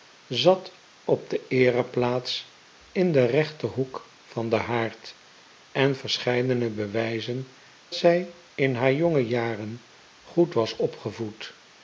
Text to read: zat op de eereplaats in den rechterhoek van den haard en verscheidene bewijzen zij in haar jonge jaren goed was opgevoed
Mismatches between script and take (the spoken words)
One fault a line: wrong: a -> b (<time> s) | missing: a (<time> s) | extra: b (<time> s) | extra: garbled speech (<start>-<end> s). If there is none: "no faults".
no faults